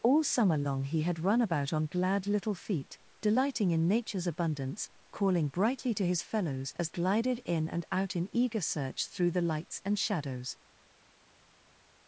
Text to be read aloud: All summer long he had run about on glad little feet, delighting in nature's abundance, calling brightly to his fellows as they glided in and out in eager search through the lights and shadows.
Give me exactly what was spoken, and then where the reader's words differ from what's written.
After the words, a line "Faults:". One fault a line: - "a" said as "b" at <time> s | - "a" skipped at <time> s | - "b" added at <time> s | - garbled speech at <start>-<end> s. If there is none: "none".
All summer long he had run about on glad little feet, delighting in nature's abundance, calling brightly to his fellows as glided in and out in eager search through the lights and shadows.
Faults:
- "they" skipped at 6.9 s